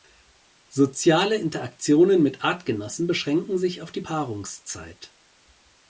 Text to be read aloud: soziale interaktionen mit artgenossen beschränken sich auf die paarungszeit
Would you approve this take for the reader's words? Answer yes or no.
yes